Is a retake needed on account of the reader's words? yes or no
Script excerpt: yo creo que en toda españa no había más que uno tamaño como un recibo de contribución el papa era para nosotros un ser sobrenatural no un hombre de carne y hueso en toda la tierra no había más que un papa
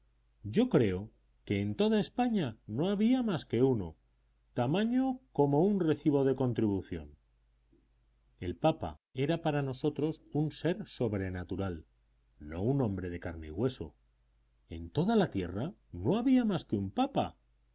no